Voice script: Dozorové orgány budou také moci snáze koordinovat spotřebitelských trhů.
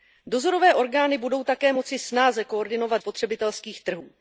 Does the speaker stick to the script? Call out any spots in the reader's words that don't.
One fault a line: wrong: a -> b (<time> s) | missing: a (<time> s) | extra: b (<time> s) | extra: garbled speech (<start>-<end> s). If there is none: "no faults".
no faults